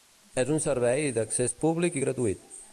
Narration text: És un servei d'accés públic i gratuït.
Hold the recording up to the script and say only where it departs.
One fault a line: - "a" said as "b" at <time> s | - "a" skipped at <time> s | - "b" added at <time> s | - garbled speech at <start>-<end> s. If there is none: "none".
none